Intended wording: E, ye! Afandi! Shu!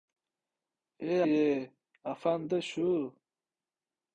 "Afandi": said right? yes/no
yes